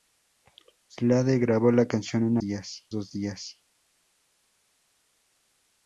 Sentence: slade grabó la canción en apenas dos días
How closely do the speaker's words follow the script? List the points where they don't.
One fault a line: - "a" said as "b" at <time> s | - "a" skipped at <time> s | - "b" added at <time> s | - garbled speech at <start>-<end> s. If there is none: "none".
- "apenas" said as "días" at 2.4 s